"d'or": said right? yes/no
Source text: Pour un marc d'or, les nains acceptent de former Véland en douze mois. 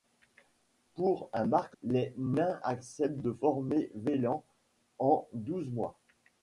no